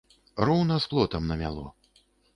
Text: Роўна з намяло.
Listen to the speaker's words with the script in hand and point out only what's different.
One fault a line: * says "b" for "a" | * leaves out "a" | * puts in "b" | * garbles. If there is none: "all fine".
* puts in "плотам"